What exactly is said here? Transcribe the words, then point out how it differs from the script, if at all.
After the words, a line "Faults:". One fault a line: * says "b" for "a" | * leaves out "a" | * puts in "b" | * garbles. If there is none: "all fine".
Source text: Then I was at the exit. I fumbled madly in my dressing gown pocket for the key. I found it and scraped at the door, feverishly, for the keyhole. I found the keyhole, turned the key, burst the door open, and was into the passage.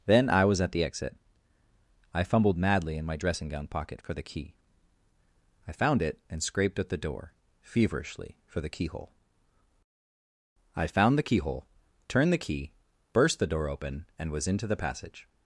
Then I was at the exit. I fumbled madly in my dressing gown pocket for the key. I found it and scraped at the door, feverishly, for the keyhole. I found the keyhole, turned the key, burst the door open, and was into the passage.
Faults:
all fine